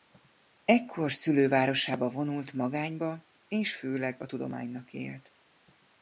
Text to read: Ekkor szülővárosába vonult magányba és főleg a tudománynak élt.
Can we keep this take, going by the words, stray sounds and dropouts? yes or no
yes